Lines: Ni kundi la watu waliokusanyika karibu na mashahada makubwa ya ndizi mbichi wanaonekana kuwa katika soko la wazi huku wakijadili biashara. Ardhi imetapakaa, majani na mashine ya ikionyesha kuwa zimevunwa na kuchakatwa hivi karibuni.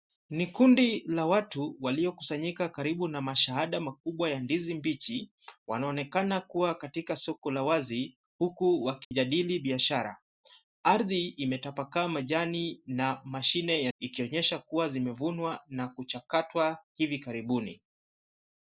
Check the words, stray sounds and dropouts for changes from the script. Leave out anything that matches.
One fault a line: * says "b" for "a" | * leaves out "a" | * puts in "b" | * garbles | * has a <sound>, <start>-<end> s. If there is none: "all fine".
* has a dropout, 9.0-9.1 s